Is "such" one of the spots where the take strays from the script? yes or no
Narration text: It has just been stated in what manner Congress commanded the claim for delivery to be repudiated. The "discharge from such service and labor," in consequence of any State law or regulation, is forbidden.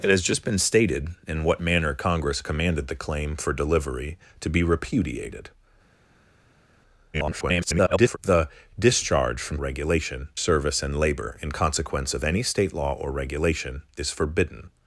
yes